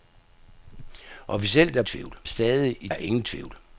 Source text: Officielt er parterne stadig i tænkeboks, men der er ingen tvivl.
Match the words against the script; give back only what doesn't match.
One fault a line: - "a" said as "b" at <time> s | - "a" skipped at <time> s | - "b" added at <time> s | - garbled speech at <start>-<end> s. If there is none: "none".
- "parterne" said as "tvivl" at 1.8 s
- "tænkeboks men der" skipped at 2.9 s